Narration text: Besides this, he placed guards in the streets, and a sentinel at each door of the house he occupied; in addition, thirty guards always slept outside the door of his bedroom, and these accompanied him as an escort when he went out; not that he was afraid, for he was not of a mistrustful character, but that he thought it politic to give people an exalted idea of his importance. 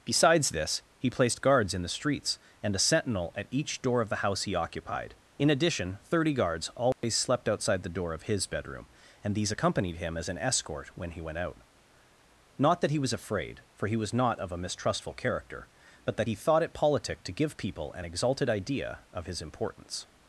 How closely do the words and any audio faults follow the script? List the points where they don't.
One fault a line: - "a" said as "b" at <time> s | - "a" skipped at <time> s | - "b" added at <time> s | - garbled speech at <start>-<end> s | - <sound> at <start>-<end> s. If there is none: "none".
- dropout at 6.9-7.0 s